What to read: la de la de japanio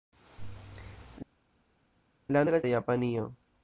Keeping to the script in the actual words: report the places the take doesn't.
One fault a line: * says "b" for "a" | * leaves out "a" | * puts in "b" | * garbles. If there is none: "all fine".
all fine